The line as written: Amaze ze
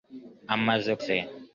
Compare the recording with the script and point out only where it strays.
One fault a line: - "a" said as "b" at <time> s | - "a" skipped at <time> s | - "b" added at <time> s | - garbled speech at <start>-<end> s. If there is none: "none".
none